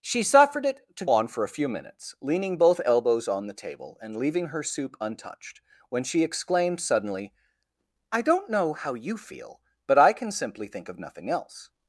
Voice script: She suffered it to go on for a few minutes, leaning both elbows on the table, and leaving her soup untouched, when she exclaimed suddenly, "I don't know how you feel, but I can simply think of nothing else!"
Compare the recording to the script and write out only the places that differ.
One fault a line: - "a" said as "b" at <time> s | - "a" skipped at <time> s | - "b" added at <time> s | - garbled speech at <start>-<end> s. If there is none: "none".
- "go" skipped at 1.1 s